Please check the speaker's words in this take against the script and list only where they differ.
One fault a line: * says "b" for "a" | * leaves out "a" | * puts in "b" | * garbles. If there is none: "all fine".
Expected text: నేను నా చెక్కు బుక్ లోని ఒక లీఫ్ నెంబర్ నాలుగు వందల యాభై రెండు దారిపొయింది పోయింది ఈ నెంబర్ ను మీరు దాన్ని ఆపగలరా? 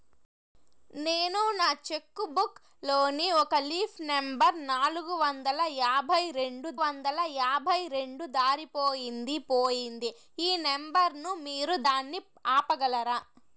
* puts in "వందల యాభై రెండు"